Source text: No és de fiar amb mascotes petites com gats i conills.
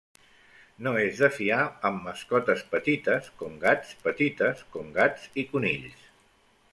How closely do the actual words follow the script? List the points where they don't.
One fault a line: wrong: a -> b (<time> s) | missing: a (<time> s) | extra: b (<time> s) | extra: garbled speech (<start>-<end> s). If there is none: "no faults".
extra: petites com gats (4.0 s)